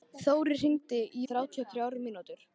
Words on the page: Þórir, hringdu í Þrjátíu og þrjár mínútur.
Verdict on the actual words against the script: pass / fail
pass